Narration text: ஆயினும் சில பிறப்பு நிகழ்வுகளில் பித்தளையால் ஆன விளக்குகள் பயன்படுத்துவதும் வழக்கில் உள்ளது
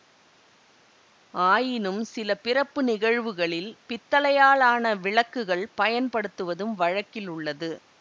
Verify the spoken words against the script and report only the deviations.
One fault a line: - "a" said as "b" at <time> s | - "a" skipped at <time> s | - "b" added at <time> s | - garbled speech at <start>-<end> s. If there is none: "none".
none